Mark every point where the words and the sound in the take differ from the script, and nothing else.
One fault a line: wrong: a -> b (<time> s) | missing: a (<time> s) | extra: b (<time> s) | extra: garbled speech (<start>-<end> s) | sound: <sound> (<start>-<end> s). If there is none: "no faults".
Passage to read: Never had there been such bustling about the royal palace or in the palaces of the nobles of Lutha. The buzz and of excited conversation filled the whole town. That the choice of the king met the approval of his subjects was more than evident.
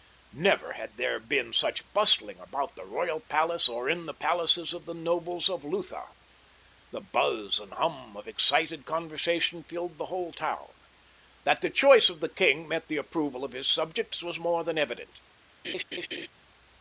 extra: hum (7.8 s)
sound: laugh (15.6-16.3 s)